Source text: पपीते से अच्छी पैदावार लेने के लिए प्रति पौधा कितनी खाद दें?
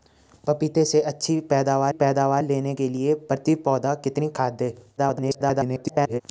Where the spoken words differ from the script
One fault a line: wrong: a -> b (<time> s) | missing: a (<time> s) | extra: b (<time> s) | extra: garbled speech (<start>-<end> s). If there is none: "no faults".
extra: पैदावार (1.9 s)
extra: garbled speech (5.0-6.2 s)